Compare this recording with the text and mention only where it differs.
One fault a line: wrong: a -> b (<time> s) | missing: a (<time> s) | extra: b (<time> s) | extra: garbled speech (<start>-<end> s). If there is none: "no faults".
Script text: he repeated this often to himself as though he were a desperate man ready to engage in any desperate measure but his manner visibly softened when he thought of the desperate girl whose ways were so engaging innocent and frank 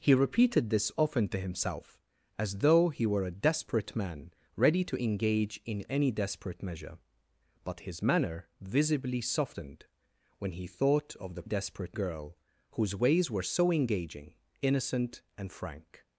no faults